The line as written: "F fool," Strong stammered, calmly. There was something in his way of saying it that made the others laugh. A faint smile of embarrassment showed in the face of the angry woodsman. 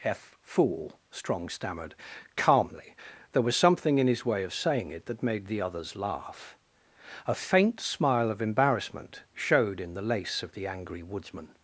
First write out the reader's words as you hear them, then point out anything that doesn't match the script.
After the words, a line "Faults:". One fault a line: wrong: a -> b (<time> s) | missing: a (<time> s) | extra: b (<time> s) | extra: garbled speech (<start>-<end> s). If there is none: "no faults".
"F fool," Strong stammered, calmly. There was something in his way of saying it that made the others laugh. A faint smile of embarrassment showed in the lace of the angry woodsman.
Faults:
wrong: face -> lace (10.0 s)